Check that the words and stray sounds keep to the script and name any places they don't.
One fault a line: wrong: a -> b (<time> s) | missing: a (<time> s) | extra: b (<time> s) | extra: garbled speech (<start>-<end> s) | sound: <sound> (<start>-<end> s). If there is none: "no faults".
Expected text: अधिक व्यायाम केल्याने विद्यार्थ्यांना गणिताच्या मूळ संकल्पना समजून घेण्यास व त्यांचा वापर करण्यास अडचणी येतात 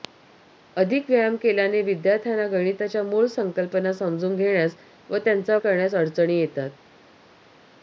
missing: वापर (5.6 s)